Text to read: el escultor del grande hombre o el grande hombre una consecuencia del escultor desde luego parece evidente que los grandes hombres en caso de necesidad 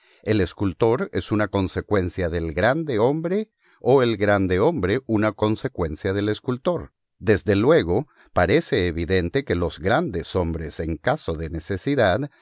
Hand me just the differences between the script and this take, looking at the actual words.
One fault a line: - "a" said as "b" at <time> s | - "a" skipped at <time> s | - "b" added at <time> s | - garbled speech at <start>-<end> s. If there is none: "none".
- "es una consecuencia" added at 1.1 s